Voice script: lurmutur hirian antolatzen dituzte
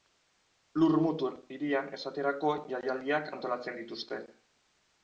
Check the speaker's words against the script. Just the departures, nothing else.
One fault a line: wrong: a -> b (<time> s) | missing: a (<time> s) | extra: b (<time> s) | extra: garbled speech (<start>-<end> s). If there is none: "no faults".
extra: esaterako jaialdiak (2.0 s)